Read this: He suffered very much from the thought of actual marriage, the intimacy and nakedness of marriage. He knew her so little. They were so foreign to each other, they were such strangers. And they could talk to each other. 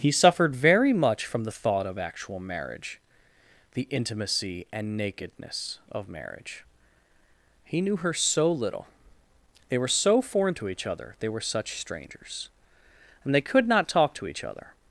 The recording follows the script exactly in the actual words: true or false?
false